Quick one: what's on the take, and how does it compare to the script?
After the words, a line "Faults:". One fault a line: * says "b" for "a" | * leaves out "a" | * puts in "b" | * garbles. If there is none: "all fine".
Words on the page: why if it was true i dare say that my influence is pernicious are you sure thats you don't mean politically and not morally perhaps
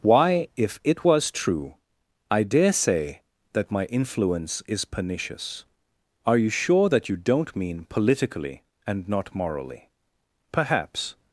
why if it was true i dare say that my influence is pernicious are you sure that you don't mean politically and not morally perhaps
Faults:
* says "that" for "thats"